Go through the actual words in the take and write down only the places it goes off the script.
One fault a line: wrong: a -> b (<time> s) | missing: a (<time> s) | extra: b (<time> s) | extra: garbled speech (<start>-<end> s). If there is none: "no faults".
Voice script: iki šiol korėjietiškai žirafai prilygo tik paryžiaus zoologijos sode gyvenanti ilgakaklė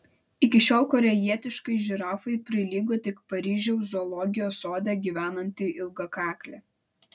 no faults